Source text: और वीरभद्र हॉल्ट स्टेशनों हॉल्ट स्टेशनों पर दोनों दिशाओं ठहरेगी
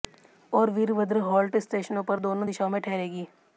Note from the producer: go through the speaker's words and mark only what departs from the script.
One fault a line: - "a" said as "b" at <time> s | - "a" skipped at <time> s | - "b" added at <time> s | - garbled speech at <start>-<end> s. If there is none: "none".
- "हॉल्ट स्टेशनों" skipped at 2.0 s
- "में" added at 2.7 s